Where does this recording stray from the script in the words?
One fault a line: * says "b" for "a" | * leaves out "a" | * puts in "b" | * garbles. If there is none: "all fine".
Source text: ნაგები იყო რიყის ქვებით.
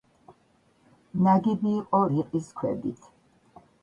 all fine